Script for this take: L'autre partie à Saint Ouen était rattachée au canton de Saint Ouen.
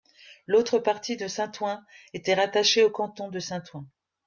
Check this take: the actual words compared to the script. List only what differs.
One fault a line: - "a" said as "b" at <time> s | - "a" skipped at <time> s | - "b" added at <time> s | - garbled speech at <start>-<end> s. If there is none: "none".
- "à" said as "de" at 1.2 s